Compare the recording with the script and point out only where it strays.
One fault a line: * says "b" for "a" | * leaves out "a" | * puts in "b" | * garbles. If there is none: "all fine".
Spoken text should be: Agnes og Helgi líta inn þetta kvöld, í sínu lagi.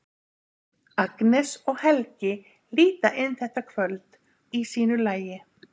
all fine